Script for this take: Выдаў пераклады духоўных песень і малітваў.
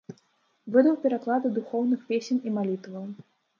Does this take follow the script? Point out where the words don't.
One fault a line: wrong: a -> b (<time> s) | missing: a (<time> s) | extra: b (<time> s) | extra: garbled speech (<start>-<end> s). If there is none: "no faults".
no faults